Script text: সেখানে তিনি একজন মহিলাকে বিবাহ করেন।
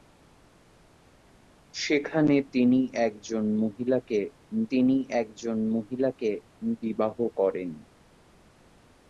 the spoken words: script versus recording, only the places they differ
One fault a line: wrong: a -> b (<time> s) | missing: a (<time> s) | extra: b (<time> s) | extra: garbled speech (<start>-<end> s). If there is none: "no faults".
extra: তিনি একজন মহিলাকে (4.7 s)